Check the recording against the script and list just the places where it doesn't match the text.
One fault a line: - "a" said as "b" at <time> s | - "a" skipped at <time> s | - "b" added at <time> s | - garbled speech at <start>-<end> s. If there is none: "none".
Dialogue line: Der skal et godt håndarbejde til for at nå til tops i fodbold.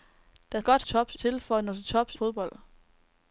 - "skal" skipped at 0.6 s
- "håndarbejde" said as "tops" at 0.8 s
- "i" skipped at 2.1 s